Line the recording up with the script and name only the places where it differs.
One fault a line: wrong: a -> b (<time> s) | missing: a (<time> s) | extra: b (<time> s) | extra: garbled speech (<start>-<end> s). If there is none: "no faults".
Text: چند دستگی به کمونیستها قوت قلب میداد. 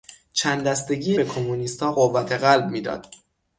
no faults